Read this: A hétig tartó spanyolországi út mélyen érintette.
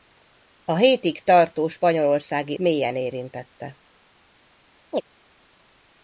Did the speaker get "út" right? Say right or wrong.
wrong